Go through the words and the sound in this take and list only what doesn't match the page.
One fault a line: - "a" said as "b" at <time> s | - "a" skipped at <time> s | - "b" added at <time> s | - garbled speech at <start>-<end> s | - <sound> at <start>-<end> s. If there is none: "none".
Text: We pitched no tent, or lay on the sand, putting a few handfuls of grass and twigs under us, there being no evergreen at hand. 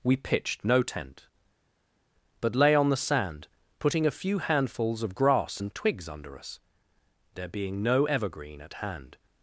- "or" said as "but" at 2.4 s